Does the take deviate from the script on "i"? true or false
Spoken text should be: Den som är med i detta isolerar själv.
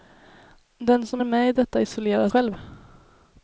false